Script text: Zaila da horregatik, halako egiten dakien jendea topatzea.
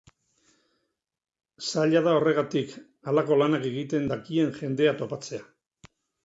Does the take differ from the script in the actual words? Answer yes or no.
yes